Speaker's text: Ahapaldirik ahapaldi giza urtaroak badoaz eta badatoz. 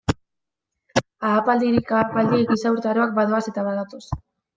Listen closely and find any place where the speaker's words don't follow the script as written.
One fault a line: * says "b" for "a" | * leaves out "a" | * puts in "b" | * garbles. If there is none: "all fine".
all fine